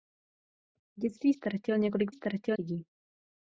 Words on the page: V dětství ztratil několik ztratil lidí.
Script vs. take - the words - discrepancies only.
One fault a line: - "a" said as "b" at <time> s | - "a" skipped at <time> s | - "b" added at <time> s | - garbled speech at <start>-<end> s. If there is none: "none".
none